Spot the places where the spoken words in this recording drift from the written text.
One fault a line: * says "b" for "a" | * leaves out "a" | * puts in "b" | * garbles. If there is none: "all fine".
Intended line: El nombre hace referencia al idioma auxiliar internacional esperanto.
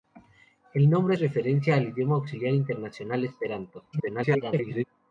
* leaves out "hace"
* garbles